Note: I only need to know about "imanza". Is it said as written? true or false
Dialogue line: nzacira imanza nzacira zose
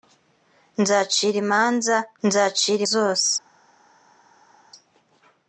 true